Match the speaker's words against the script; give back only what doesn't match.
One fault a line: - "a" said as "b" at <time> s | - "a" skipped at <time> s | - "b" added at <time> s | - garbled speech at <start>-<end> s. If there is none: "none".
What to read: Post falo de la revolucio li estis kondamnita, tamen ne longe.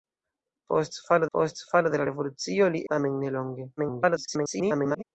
- "post falo" added at 1.4 s
- "estis kondamnita" skipped at 2.8 s
- garbled speech at 3.8-5.0 s